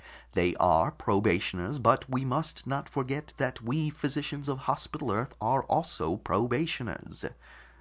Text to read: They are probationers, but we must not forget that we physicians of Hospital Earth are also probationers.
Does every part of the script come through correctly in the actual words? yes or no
yes